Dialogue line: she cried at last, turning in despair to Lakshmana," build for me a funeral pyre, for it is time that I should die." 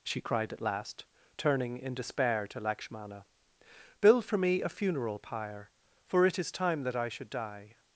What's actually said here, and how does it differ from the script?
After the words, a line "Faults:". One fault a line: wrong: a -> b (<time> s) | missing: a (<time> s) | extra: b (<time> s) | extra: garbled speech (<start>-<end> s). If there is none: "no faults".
she cried at last, turning in despair to Lakshmana," build for me a funeral pyre, for it is time that I should die."
Faults:
no faults